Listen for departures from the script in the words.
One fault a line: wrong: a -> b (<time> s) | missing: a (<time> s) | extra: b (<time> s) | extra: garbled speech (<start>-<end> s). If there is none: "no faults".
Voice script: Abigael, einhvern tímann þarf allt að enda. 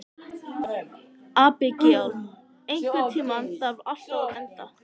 no faults